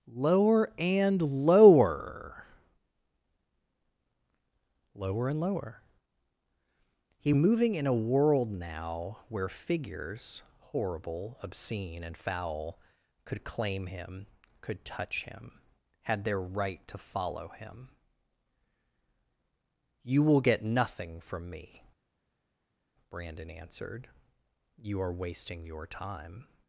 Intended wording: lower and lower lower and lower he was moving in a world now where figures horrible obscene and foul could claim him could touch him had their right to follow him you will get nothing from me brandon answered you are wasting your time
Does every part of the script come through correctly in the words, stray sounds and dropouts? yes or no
no